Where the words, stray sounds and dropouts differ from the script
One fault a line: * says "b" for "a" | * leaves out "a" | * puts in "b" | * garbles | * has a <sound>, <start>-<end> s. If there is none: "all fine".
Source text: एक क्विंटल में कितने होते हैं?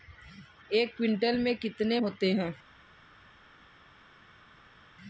all fine